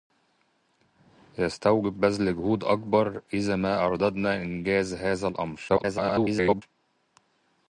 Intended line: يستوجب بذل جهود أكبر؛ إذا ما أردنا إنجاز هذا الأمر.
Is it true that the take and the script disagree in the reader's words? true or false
true